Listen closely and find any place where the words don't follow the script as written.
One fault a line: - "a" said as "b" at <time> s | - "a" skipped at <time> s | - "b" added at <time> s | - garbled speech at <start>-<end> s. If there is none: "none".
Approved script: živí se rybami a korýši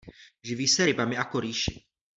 none